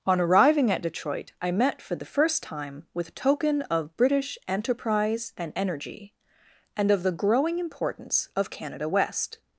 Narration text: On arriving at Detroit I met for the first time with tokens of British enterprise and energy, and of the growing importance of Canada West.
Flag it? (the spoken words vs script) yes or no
yes